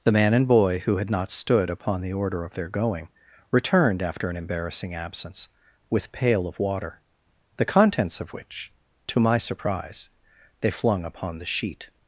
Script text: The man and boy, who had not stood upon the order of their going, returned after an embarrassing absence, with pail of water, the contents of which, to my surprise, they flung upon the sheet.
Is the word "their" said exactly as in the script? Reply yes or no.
yes